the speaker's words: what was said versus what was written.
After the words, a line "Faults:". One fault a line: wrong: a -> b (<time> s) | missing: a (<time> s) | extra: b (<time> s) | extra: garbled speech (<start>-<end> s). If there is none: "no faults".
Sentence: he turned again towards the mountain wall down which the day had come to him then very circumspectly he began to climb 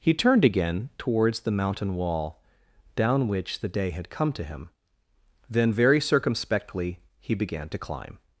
he turned again towards the mountain wall down which the day had come to him then very circumspectly he began to climb
Faults:
no faults